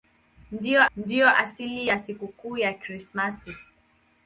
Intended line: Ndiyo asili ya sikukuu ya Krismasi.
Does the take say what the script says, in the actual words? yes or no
no